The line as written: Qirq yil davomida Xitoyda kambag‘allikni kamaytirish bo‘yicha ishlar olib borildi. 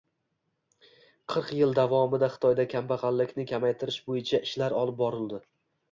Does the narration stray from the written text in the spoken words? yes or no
no